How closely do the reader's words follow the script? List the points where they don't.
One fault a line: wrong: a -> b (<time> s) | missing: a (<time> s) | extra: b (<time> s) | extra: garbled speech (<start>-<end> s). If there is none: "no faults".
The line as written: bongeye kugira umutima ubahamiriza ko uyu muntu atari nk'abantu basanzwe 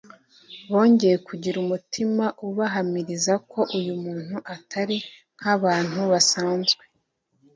no faults